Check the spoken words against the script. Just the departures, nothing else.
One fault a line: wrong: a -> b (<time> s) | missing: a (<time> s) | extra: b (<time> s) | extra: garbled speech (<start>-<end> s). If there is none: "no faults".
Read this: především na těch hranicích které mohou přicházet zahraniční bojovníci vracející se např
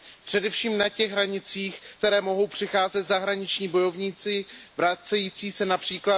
no faults